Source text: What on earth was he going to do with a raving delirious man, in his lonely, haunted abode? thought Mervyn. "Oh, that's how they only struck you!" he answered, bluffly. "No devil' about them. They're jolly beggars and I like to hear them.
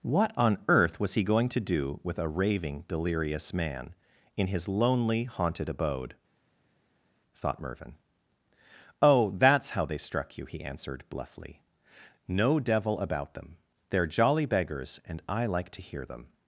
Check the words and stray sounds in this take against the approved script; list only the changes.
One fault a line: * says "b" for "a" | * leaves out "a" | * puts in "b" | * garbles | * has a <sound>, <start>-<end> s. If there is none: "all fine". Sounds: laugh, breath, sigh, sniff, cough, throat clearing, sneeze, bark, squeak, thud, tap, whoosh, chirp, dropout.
* leaves out "only"